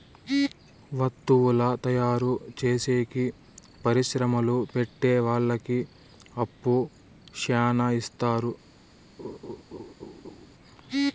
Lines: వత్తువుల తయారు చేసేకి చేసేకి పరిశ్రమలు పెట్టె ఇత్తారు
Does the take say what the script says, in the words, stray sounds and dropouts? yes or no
no